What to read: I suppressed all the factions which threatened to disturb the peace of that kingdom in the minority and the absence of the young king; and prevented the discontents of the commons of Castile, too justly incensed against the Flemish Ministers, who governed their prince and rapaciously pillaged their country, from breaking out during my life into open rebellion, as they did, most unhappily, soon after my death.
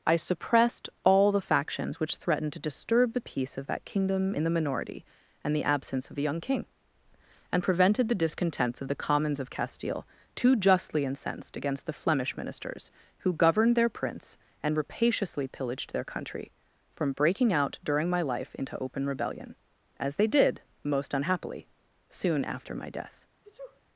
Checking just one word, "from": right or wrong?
right